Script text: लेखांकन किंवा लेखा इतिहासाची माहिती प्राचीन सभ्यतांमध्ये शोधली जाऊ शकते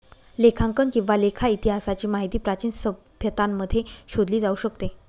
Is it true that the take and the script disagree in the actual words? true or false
false